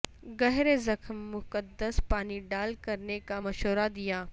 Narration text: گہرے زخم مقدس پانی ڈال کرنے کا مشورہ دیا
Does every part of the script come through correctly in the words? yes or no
yes